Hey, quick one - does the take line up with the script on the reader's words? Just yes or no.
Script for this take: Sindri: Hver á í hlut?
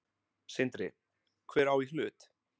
yes